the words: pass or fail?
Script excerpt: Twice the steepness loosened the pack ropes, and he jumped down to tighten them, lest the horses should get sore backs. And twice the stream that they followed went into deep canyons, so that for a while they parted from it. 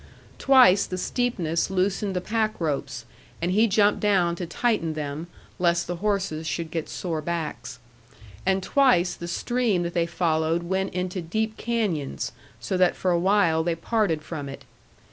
pass